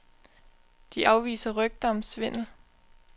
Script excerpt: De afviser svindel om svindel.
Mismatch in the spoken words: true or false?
true